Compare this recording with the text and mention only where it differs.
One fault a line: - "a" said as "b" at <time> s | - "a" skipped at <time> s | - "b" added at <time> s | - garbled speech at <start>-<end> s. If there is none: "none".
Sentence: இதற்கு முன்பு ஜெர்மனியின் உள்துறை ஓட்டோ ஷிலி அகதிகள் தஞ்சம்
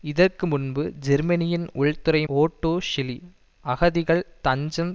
none